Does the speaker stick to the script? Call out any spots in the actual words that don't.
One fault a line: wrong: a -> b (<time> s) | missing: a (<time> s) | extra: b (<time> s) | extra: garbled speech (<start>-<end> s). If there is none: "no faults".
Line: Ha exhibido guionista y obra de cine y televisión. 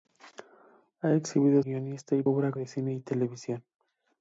no faults